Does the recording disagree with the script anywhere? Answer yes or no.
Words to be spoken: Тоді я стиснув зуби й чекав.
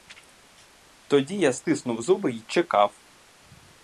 no